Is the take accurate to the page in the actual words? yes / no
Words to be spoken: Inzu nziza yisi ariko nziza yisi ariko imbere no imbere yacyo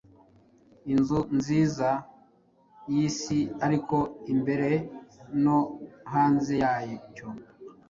no